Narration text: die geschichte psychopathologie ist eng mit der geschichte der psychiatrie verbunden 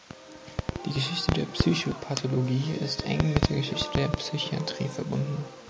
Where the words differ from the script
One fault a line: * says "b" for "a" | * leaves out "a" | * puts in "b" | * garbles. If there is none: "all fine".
* puts in "der"